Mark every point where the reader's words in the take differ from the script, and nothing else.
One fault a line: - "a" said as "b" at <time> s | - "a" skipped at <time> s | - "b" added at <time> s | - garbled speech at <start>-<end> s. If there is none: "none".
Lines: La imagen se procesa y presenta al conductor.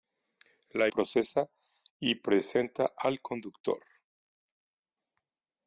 - "imagen se" skipped at 0.9 s